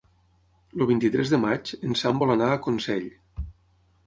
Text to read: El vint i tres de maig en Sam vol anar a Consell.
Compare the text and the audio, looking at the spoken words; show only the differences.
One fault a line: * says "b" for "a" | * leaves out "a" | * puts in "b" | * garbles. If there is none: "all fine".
all fine